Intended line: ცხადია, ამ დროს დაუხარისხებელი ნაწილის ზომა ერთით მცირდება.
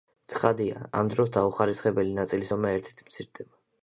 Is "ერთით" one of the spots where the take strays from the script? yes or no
no